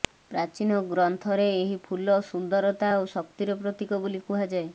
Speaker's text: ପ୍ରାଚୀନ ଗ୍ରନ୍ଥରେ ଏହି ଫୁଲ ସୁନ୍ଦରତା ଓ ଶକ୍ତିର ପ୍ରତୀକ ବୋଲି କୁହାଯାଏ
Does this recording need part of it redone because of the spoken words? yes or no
no